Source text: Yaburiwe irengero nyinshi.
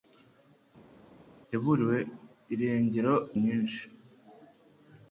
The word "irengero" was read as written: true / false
true